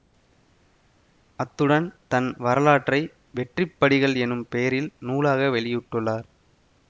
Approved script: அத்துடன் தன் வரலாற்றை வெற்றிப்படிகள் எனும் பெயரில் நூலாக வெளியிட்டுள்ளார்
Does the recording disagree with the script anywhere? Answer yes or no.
no